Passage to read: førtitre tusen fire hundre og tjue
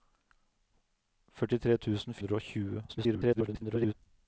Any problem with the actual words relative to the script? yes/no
yes